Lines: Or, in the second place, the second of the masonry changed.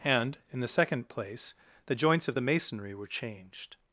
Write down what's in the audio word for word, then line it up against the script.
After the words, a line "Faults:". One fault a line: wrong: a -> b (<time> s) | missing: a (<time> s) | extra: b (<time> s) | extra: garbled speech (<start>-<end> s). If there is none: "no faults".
And, in the second place, the joints of the masonry were changed.
Faults:
wrong: Or -> And (0.0 s)
wrong: second -> joints (1.9 s)
extra: were (2.9 s)